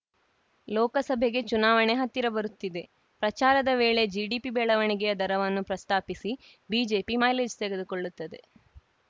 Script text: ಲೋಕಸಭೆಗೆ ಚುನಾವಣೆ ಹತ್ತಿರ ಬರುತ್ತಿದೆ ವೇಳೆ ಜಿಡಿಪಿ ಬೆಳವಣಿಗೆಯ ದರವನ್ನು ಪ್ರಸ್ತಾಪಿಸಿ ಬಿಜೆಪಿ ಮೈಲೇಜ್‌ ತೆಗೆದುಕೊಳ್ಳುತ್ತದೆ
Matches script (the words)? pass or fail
fail